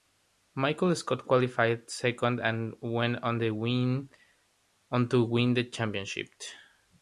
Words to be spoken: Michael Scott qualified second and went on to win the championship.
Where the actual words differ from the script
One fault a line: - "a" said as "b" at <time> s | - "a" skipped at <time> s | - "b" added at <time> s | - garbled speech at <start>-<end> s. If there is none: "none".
none